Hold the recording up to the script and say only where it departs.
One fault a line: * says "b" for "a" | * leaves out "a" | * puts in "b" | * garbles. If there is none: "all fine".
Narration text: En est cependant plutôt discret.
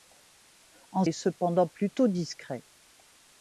all fine